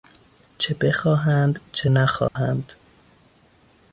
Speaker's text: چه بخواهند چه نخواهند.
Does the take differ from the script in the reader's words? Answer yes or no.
no